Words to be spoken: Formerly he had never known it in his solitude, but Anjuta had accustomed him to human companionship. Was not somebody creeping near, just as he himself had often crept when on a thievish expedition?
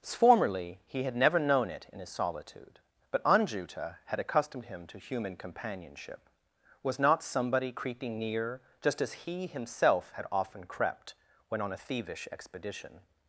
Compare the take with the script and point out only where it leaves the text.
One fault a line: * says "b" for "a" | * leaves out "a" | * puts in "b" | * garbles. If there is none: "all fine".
all fine